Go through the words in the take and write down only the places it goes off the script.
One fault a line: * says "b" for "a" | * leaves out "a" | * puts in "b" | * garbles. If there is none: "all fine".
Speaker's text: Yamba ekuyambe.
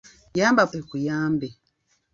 all fine